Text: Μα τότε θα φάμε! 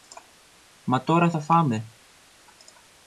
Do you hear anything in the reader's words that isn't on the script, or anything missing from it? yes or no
yes